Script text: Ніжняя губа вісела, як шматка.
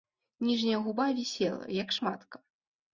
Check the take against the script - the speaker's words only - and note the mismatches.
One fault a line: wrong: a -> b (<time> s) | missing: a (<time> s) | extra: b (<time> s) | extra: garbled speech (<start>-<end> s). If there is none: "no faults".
no faults